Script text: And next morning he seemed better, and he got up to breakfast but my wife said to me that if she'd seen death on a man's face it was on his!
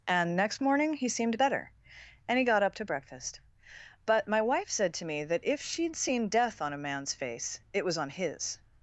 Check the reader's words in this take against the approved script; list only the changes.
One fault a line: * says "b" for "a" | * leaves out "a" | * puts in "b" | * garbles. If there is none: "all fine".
all fine